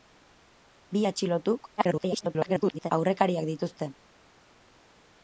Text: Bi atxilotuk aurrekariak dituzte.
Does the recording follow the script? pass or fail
fail